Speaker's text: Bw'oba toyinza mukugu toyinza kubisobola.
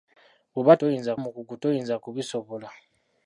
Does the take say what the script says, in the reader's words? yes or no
yes